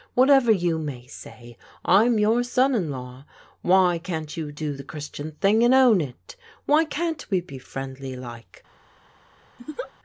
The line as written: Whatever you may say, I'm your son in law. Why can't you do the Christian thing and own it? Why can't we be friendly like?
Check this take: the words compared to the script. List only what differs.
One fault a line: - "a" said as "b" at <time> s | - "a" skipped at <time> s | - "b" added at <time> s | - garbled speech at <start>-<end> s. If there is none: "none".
none